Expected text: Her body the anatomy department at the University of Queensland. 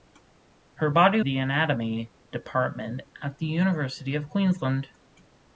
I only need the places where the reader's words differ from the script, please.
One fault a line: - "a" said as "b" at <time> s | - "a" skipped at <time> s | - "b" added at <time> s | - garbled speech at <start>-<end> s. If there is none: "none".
none